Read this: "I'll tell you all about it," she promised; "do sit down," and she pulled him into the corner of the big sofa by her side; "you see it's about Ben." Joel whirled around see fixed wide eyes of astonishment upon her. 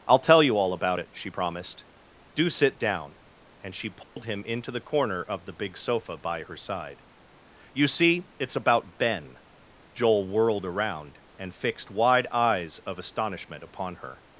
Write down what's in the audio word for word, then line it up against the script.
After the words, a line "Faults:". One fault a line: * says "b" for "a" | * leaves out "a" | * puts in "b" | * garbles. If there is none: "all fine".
"I'll tell you all about it," she promised; "do sit down," and she pulled him into the corner of the big sofa by her side; "you see it's about Ben." Joel whirled around and fixed wide eyes of astonishment upon her.
Faults:
* says "and" for "see"